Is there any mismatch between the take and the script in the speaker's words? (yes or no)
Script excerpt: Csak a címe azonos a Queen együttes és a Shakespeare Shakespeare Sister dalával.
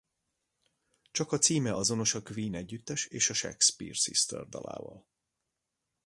yes